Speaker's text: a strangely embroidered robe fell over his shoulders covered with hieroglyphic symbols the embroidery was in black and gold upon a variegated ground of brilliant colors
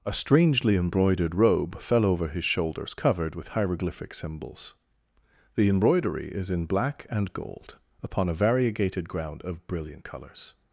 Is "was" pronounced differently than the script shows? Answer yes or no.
yes